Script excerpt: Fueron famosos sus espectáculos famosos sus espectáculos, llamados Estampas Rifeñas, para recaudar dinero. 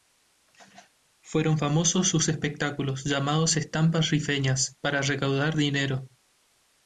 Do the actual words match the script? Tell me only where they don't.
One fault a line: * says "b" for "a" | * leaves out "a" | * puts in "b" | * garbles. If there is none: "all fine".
* leaves out "famosos sus espectáculos"